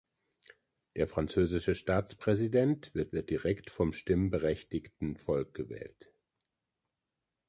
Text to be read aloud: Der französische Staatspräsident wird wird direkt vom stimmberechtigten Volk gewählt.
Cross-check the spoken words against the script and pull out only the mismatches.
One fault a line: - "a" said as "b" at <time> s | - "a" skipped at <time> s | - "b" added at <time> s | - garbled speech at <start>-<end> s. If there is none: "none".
none